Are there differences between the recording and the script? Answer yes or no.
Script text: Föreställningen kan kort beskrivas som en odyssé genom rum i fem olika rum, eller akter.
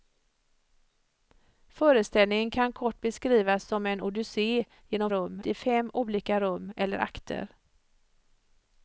no